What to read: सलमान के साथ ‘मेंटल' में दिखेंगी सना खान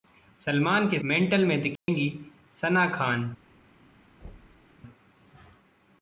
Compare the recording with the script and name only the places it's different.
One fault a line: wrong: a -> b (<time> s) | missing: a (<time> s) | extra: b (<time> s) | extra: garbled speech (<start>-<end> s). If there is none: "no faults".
missing: साथ (1.0 s)